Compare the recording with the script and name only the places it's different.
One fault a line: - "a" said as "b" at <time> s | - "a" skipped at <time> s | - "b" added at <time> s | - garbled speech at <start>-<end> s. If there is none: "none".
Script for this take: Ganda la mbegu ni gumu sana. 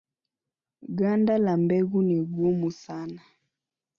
none